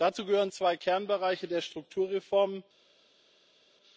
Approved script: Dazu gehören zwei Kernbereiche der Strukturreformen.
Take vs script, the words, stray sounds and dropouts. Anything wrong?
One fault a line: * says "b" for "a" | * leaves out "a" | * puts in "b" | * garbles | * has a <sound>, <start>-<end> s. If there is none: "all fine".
all fine